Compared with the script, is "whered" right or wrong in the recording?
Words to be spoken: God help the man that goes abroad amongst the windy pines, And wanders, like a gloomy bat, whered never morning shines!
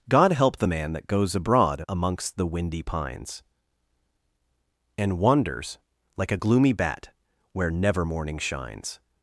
wrong